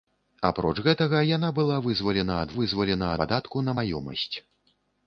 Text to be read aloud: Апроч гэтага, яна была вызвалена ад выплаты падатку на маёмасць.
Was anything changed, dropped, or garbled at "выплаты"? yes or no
yes